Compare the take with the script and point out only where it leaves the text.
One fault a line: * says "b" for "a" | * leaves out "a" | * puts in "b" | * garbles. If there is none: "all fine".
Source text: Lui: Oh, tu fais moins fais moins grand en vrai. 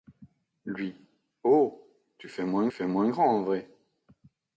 all fine